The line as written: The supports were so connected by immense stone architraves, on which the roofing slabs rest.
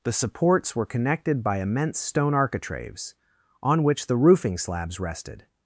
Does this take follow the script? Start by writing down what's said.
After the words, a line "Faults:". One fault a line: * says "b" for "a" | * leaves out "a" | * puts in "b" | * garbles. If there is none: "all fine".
The supports were connected by immense stone architraves, on which the roofing slabs rested.
Faults:
* leaves out "so"
* says "rested" for "rest"